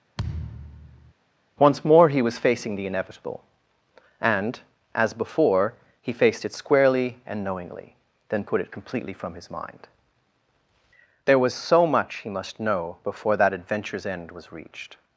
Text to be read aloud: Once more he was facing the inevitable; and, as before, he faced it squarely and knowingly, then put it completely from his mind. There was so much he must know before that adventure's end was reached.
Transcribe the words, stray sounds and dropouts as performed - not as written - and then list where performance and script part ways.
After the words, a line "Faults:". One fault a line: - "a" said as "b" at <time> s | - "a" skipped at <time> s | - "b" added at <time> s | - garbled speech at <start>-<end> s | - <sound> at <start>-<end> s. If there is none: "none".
Once more he was facing the inevitable; and, as before, he faced it squarely and knowingly, then put it completely from his mind. There was so much he must know before that adventure's end was reached.
Faults:
- thud at 0.2-1.1 s